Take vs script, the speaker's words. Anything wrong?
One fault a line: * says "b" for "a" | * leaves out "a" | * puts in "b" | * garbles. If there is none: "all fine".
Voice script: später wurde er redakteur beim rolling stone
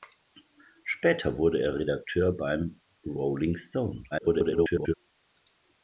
* garbles